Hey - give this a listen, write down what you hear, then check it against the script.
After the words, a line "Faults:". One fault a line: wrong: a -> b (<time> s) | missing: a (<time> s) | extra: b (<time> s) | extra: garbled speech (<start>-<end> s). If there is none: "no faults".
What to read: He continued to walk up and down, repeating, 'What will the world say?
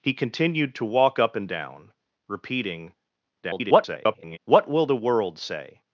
He continued to walk up and down, repeating, [garbled] 'What will the world say?
Faults:
extra: garbled speech (3.4-4.4 s)